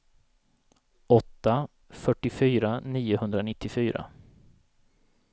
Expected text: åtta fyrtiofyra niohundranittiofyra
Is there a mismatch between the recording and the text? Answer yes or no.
no